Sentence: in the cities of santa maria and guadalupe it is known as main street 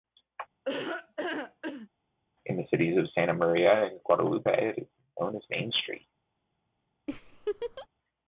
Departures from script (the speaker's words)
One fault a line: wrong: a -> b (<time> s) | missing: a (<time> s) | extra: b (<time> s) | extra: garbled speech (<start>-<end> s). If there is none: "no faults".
no faults